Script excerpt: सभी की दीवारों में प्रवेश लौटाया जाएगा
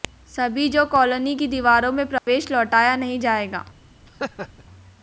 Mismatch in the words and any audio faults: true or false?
true